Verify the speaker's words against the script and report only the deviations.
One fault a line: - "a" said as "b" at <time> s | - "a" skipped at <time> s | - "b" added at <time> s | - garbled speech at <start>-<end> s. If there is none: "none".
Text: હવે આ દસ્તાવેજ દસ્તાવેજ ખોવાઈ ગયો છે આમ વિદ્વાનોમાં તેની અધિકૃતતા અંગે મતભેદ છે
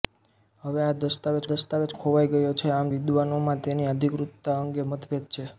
none